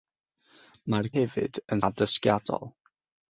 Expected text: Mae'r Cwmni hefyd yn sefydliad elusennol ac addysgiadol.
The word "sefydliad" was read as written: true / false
false